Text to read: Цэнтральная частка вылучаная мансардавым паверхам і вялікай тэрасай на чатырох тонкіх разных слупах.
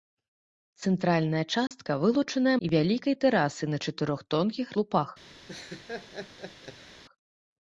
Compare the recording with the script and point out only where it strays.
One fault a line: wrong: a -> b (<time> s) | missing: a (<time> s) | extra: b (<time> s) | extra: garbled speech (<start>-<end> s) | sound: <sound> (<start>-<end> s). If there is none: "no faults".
sound: dropout (1.7-1.7 s)
missing: мансардавым паверхам (2.5 s)
missing: разных (4.7 s)
sound: laugh (5.5-7.0 s)